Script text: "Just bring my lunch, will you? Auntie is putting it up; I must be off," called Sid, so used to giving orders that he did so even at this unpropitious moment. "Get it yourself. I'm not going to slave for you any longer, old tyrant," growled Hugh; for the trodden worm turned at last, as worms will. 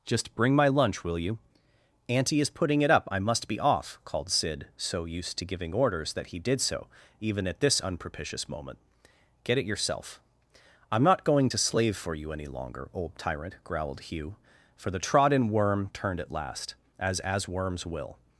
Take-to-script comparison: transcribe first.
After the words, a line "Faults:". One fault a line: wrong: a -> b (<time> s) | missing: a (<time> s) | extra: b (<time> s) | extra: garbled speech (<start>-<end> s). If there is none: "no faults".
"Just bring my lunch, will you? Auntie is putting it up; I must be off," called Sid, so used to giving orders that he did so even at this unpropitious moment. "Get it yourself. I'm not going to slave for you any longer, old tyrant," growled Hugh; for the trodden worm turned at last, as as worms will.
Faults:
extra: as (17.2 s)